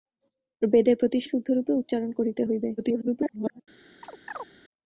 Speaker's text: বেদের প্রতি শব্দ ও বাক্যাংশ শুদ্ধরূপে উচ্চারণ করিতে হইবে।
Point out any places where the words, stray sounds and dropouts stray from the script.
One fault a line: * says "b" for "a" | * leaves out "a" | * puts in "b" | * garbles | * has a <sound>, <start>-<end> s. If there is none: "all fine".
* leaves out "শব্দ ও বাক্যাংশ"
* garbles
* has a chirp, 4.0-4.5 s